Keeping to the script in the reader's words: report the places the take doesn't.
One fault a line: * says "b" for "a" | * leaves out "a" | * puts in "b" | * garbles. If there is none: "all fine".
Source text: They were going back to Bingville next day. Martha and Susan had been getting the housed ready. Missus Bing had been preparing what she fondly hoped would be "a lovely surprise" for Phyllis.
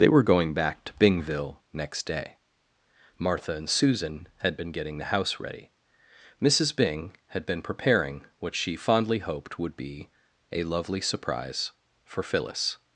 * says "house" for "housed"